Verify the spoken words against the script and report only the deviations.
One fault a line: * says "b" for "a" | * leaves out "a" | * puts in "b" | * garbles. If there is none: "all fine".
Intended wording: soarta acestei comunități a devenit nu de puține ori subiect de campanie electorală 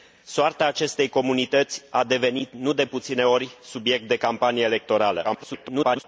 * garbles